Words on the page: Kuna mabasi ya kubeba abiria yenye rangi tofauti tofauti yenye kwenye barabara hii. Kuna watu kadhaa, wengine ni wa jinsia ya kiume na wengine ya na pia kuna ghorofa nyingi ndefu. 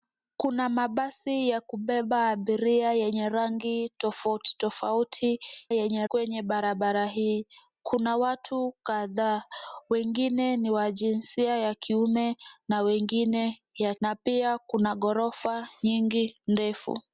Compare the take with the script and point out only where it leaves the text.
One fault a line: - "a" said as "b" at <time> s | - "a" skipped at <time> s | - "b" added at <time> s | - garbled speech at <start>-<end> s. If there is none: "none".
none